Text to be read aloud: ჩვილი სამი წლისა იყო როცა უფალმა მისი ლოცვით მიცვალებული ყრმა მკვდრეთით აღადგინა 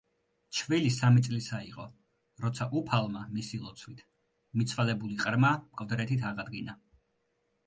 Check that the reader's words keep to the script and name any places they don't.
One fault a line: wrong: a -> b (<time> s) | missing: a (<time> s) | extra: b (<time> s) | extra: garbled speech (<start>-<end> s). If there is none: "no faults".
no faults